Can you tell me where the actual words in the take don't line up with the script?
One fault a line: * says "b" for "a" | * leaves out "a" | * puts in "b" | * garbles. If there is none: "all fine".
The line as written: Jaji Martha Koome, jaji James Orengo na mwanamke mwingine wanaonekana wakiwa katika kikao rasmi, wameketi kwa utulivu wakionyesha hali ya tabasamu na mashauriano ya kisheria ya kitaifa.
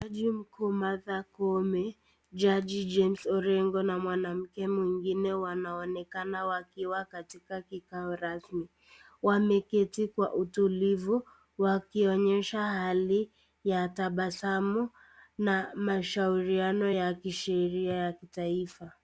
* puts in "mkuu"